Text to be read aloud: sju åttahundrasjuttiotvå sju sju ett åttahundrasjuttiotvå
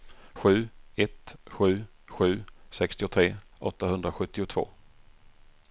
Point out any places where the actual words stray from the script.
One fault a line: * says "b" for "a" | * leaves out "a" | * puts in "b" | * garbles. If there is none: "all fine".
* says "ett" for "åttahundrasjuttiotvå"
* says "sextiotre" for "ett"